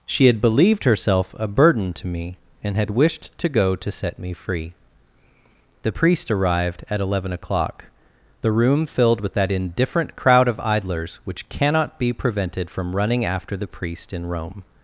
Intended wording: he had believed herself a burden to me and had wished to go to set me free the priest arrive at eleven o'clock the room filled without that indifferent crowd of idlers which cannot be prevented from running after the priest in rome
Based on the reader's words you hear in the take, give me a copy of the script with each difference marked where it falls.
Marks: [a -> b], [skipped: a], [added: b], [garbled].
[he -> she] had believed herself a burden to me and had wished to go to set me free the priest [arrive -> arrived] at eleven o'clock the room filled [without -> with] that indifferent crowd of idlers which cannot be prevented from running after the priest in rome